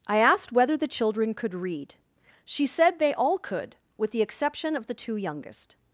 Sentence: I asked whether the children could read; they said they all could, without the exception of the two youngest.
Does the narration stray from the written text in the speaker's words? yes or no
yes